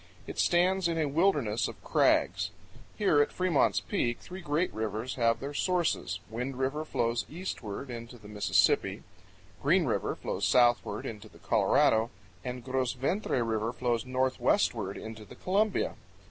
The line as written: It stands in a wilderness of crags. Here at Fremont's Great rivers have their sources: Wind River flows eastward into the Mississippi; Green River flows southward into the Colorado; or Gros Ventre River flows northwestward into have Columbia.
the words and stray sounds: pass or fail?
fail